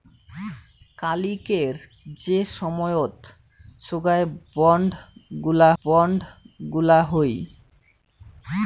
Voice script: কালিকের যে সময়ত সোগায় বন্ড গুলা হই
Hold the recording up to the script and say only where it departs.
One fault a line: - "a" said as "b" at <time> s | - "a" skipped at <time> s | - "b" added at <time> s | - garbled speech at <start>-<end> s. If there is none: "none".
- "বন্ড গুলা" added at 5.8 s